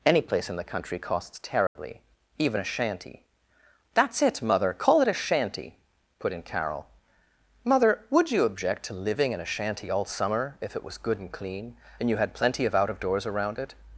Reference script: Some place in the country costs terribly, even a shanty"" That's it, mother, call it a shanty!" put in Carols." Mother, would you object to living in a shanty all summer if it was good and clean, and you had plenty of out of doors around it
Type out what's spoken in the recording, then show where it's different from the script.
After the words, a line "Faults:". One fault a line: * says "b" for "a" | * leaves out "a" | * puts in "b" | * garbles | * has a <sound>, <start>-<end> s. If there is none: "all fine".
Any place in the country costs terribly, even a shanty"" That's it, mother, call it a shanty!" put in Carol." Mother, would you object to living in a shanty all summer if it was good and clean, and you had plenty of out of doors around it
Faults:
* says "Any" for "Some"
* has a dropout, 1.7-1.8 s
* says "Carol" for "Carols"